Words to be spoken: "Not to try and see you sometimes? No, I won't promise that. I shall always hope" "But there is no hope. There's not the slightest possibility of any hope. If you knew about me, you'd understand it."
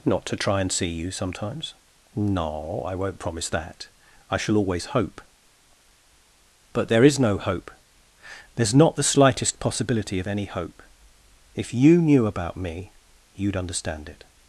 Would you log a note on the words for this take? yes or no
no